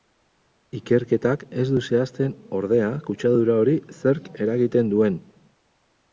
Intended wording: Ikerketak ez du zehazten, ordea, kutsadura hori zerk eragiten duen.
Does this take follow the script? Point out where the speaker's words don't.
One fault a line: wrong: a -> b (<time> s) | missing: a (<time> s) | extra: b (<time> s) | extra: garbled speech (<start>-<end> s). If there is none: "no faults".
no faults